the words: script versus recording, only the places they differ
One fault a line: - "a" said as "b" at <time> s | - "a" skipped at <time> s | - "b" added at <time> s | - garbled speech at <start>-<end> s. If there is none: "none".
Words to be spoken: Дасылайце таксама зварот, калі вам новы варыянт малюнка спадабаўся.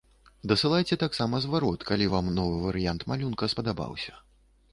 none